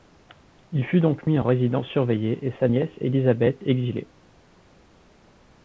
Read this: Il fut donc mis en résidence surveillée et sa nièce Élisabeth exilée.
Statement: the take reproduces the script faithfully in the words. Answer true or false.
true